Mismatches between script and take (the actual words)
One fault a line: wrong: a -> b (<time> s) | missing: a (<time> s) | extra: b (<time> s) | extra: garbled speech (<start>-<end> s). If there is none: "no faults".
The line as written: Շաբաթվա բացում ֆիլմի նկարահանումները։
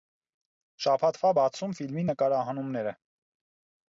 no faults